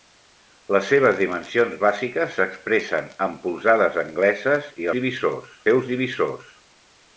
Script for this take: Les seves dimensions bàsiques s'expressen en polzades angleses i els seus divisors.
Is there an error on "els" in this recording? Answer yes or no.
yes